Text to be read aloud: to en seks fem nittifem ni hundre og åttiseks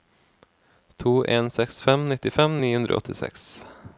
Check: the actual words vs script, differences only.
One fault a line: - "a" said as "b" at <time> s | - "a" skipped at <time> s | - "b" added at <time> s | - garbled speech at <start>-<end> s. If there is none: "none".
none